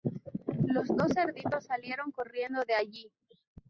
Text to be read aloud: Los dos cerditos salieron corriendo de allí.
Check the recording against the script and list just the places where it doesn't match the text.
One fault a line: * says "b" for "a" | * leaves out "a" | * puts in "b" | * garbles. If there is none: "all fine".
all fine